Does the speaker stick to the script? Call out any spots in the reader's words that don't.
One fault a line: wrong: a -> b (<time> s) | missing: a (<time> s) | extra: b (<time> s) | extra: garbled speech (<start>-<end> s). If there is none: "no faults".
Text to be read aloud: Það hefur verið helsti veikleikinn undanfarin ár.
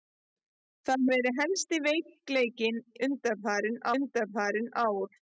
missing: hefur (1.0 s)
extra: undanfarin (4.0 s)